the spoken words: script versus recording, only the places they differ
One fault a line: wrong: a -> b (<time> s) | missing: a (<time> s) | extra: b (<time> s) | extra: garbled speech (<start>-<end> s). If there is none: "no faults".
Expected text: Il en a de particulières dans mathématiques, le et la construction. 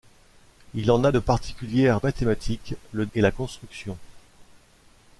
no faults